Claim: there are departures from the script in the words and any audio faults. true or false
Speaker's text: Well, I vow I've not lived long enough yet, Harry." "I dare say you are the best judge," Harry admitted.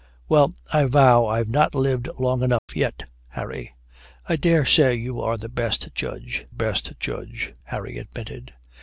true